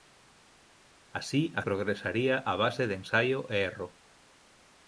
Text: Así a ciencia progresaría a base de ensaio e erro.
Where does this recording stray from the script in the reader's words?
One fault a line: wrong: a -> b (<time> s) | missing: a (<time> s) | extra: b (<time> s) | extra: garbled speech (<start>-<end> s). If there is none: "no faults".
missing: ciencia (1.6 s)